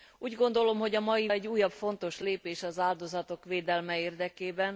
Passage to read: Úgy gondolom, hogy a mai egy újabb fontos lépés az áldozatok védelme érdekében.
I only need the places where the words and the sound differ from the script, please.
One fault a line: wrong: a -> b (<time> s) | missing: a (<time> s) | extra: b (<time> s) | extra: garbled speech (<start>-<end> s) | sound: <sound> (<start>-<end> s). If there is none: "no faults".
no faults